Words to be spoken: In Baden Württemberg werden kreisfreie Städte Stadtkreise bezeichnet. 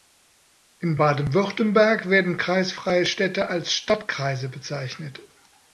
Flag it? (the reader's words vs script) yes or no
yes